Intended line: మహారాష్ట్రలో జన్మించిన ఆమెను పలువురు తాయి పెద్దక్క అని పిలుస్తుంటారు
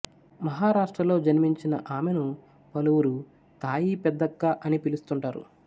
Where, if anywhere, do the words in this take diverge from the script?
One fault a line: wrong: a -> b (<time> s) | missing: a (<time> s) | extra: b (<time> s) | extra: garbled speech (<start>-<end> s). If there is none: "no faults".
no faults